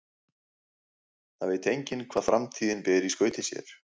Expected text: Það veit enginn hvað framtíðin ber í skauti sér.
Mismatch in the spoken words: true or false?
false